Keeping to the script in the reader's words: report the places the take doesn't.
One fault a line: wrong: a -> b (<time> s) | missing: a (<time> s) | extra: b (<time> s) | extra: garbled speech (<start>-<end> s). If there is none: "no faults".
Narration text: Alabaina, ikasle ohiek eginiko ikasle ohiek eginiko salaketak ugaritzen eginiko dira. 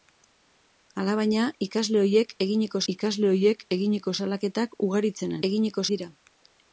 no faults